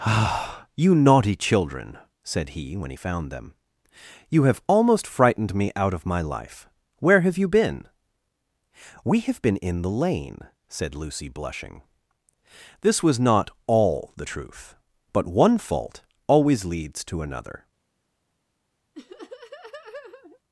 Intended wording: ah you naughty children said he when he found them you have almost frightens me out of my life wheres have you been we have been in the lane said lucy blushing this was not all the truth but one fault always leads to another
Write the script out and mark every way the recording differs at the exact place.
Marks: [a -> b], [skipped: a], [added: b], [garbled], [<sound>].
ah you naughty children said he when he found them you have almost [frightens -> frightened] me out of my life [wheres -> where] have you been we have been in the lane said lucy blushing this was not all the truth but one fault always leads to another [laugh]